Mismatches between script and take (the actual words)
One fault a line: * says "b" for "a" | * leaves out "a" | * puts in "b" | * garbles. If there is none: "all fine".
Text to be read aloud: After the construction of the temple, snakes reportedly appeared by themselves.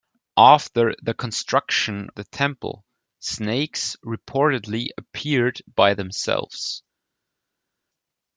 * leaves out "of"